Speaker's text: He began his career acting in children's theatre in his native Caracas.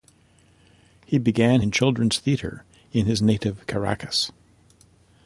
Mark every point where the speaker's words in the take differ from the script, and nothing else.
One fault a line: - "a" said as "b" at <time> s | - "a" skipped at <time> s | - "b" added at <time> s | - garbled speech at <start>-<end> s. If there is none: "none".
- "his career acting" skipped at 1.6 s